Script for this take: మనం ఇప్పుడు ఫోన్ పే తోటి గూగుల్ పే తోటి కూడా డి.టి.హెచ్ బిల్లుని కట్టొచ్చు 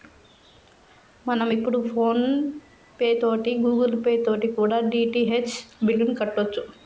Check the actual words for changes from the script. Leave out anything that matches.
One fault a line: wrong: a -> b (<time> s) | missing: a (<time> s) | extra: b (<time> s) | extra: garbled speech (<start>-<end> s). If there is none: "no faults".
no faults